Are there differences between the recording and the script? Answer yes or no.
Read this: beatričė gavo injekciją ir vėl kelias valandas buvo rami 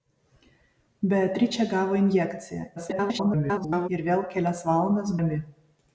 yes